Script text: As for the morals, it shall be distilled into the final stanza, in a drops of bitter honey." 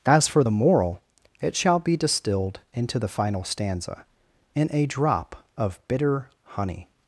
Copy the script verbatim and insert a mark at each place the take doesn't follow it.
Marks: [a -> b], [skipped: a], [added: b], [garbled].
As for the [morals, -> moral] it shall be distilled into the final stanza, in a [drops -> drop] of bitter honey."